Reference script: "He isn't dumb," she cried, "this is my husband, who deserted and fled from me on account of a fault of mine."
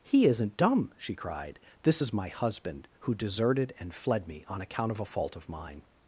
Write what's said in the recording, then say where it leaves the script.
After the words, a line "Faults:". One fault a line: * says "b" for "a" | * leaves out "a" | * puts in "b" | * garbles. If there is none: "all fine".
"He isn't dumb," she cried, "this is my husband, who deserted and fled me on account of a fault of mine."
Faults:
* leaves out "from"